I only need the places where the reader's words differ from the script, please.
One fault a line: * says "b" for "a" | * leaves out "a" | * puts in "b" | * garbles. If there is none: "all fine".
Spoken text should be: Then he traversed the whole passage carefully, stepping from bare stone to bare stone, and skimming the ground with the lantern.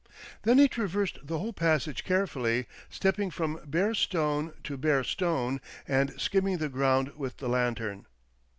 all fine